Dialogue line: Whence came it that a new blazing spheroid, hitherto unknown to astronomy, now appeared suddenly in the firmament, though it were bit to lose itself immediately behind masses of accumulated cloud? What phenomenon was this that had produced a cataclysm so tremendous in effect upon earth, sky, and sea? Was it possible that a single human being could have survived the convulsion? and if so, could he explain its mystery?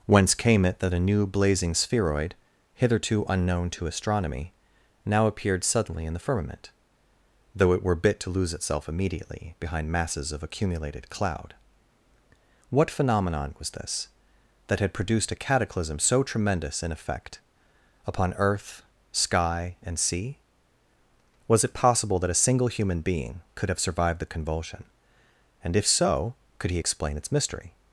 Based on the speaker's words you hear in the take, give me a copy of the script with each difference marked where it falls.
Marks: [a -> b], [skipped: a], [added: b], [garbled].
Whence came it that a new blazing spheroid, hitherto unknown to astronomy, now appeared suddenly in the firmament, though it were bit to lose itself immediately behind masses of accumulated cloud? What phenomenon was this that had produced a cataclysm so tremendous in effect upon earth, sky, and sea? Was it possible that a single human being could have survived the convulsion? and if so, could he explain its mystery?